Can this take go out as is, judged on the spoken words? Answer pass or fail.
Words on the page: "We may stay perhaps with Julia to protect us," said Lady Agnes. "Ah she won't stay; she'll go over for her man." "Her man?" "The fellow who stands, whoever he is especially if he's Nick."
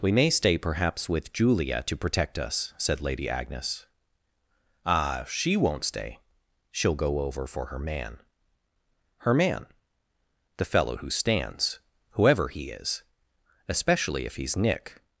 pass